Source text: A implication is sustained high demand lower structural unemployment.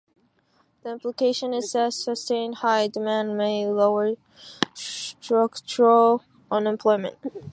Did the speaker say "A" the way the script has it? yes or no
no